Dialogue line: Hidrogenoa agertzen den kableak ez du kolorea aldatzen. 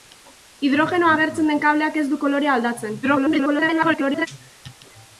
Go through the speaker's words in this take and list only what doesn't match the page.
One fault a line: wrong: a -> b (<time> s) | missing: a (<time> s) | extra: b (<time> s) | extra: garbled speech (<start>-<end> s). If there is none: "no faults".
extra: garbled speech (3.0-4.3 s)